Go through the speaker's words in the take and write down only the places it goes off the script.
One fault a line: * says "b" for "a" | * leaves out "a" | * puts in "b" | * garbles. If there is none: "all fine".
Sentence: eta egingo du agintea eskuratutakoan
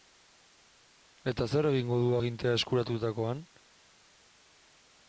* puts in "zer"